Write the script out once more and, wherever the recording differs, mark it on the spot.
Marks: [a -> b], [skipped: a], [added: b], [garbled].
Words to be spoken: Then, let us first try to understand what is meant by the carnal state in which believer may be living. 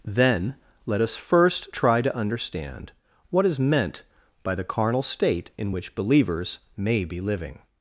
Then, let us first try to understand what is meant by the carnal state in which [believer -> believers] may be living.